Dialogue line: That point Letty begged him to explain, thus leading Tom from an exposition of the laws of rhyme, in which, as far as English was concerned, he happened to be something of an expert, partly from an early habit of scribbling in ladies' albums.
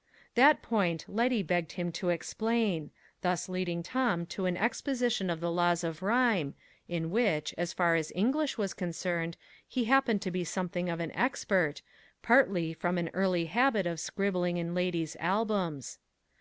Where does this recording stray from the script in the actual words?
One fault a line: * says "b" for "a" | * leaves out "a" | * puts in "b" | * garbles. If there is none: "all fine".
* says "to" for "from"